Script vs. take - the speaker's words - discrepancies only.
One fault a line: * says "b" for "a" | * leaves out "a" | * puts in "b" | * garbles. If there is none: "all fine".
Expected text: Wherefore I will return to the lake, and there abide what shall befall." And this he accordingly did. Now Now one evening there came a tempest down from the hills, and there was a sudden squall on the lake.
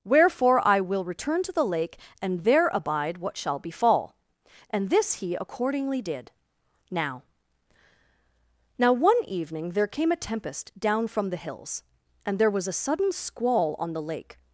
all fine